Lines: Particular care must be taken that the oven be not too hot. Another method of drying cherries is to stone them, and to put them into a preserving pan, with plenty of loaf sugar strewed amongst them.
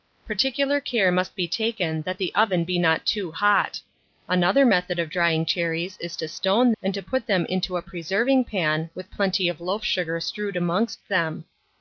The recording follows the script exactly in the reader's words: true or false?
false